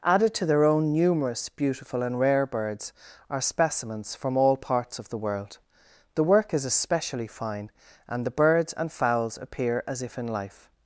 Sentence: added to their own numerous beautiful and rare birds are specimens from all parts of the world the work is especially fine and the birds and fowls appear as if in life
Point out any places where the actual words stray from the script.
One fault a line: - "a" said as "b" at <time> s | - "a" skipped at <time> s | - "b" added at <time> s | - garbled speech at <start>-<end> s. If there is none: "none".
none